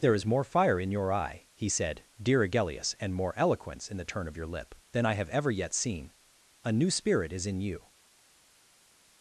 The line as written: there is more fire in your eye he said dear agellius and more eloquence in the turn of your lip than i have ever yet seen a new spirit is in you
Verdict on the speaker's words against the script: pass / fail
pass